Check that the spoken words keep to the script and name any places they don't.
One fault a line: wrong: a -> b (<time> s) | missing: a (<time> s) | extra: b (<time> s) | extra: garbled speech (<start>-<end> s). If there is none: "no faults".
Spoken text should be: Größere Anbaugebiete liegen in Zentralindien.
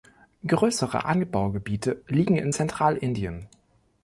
no faults